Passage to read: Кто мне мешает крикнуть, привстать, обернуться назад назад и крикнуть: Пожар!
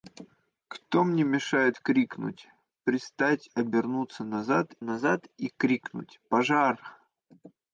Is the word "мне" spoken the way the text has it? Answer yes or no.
yes